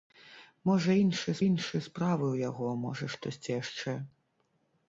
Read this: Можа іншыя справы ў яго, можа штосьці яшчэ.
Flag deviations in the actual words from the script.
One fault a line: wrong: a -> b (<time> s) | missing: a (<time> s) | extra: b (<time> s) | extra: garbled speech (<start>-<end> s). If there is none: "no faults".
extra: іншыя (1.5 s)